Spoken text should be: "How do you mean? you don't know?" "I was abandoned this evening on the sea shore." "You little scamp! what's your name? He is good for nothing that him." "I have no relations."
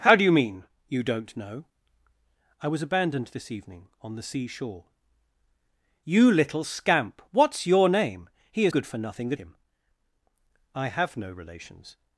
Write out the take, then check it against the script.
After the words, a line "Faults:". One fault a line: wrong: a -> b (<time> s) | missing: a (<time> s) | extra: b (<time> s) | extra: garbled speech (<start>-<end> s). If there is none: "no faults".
"How do you mean? you don't know?" "I was abandoned this evening on the sea shore." "You little scamp! what's your name? He is good for nothing that him." "I have no relations."
Faults:
no faults